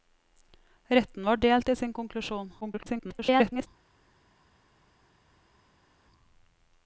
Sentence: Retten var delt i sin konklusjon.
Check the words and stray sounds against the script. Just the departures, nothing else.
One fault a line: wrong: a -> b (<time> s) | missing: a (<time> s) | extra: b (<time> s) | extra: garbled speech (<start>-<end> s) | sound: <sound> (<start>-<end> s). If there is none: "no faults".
extra: garbled speech (2.6-3.7 s)